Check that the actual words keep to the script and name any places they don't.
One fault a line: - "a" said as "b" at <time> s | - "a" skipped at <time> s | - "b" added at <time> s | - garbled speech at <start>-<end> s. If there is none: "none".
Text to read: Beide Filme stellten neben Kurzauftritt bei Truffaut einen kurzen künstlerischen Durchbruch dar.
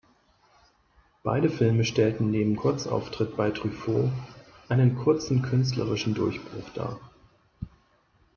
none